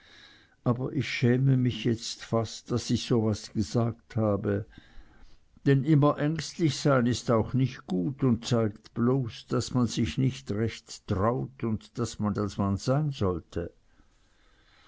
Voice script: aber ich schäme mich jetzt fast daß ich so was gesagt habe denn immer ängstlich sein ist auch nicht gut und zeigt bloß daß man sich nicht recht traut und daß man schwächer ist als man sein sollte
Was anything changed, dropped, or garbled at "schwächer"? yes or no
yes